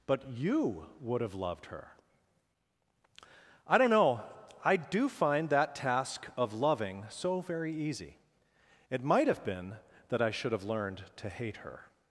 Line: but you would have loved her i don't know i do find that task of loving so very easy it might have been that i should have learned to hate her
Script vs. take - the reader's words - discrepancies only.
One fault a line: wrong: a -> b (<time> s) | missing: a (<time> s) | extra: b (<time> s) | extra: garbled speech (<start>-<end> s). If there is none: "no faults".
no faults